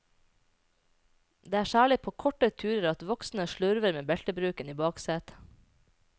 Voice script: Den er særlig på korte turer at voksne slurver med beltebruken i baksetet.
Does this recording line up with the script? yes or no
no